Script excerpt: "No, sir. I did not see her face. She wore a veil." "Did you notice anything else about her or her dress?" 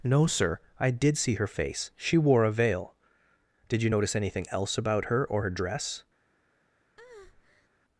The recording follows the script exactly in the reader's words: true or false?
false